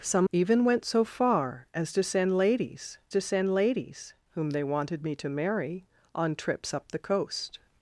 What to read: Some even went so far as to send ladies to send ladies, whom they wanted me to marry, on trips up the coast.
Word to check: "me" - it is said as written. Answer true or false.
true